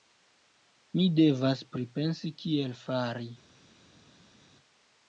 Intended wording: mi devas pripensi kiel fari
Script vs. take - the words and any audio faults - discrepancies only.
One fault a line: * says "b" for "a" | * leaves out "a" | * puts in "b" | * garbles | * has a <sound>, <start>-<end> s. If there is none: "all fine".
all fine